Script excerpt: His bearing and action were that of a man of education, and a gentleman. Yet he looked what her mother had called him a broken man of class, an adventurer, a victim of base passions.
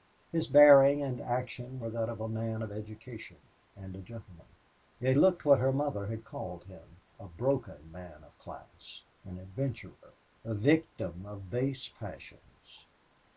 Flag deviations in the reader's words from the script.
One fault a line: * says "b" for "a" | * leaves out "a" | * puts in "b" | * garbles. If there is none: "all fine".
* leaves out "he"